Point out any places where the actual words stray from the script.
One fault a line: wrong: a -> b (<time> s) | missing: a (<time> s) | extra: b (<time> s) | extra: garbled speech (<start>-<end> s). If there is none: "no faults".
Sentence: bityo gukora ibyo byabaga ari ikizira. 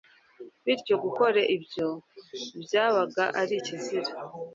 no faults